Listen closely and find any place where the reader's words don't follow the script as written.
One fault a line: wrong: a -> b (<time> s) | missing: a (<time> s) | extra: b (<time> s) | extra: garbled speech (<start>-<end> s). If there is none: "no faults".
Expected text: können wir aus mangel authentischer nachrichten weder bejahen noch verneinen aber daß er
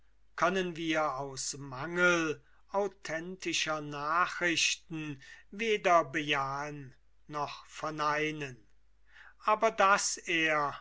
no faults